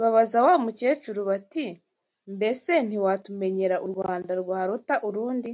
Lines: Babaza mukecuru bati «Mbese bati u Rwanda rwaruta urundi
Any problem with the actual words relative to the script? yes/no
yes